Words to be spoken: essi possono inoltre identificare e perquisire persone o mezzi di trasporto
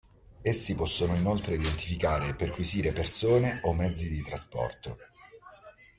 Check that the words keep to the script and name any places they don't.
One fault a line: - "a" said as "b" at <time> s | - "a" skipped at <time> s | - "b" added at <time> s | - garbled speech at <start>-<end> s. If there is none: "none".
none